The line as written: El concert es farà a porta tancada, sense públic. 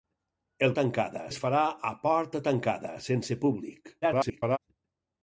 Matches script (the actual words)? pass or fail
fail